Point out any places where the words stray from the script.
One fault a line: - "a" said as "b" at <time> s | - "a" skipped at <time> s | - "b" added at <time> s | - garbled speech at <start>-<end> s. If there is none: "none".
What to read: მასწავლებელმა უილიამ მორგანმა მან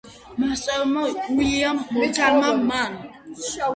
none